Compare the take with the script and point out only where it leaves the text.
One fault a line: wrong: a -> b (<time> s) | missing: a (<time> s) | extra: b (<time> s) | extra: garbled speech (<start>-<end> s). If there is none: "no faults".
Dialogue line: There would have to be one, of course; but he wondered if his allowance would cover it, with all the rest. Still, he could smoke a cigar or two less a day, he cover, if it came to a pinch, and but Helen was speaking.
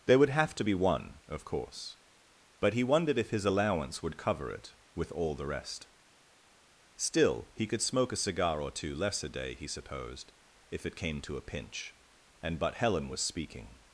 wrong: cover -> supposed (9.7 s)